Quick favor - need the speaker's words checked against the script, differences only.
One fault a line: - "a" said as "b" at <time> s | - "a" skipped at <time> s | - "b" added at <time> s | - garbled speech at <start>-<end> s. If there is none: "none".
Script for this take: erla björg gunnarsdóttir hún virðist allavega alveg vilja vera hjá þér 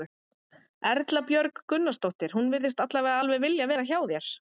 none